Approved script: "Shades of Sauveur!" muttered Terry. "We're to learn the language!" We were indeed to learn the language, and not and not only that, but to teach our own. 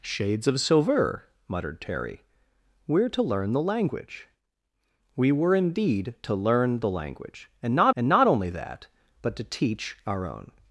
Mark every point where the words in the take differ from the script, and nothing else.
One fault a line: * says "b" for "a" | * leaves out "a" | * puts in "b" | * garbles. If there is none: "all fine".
all fine